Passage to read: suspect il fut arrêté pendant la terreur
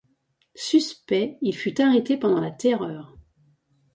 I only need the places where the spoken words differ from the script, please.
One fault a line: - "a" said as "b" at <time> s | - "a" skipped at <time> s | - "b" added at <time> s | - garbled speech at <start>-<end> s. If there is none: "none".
none